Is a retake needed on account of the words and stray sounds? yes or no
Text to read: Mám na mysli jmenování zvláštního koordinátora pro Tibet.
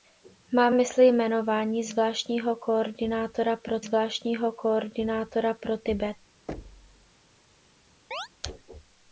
yes